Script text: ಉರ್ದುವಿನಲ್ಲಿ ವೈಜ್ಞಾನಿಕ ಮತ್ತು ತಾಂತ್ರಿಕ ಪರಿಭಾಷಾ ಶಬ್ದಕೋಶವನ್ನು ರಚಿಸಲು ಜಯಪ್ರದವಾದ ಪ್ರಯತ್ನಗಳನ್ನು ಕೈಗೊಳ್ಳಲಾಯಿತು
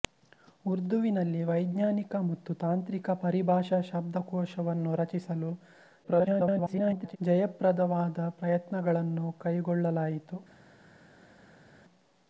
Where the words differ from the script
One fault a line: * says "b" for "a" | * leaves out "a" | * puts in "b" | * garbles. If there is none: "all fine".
* garbles